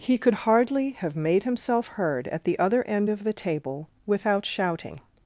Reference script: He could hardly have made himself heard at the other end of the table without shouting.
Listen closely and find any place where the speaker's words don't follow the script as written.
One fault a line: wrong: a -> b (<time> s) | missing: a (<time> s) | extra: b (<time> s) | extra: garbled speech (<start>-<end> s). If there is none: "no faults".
no faults